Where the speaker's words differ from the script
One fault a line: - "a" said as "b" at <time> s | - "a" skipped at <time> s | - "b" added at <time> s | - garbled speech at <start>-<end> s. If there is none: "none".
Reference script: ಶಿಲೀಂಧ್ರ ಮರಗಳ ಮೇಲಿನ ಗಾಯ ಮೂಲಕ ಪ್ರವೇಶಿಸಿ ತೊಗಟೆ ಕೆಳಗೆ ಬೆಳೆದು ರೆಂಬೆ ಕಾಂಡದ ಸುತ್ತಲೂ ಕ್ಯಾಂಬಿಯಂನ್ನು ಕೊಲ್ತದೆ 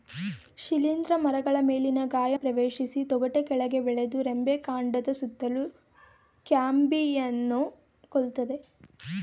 - "ಮೂಲಕ" skipped at 2.3 s